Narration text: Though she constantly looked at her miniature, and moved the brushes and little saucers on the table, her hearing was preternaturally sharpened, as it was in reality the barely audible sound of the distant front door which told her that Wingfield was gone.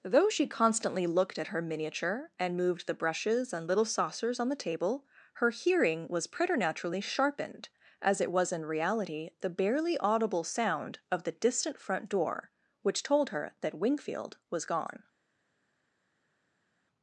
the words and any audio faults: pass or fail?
pass